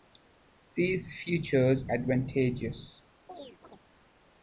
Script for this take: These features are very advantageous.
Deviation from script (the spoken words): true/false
true